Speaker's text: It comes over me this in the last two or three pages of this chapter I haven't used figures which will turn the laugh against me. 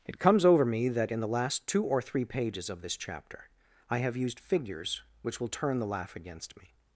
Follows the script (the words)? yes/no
no